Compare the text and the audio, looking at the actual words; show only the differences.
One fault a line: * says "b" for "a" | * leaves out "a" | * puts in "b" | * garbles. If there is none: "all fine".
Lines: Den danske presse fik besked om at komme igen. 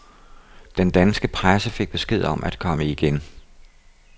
all fine